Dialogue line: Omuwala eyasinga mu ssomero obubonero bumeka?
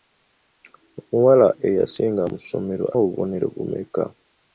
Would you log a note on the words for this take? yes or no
no